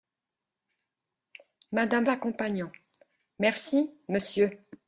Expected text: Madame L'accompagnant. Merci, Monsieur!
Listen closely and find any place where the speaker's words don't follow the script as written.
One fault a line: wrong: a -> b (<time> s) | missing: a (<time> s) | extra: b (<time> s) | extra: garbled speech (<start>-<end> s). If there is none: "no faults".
no faults